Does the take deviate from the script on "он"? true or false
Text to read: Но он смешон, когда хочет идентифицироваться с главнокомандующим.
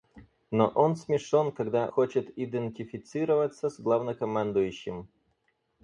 false